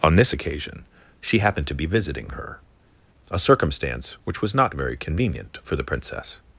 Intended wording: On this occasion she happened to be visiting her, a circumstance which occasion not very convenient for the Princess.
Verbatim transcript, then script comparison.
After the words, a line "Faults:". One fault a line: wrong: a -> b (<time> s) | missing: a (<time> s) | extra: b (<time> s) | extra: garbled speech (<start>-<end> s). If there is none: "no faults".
On this occasion she happened to be visiting her, a circumstance which was not very convenient for the Princess.
Faults:
wrong: occasion -> was (4.4 s)